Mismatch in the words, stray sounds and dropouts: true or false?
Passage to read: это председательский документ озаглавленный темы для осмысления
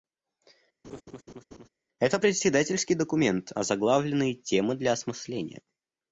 true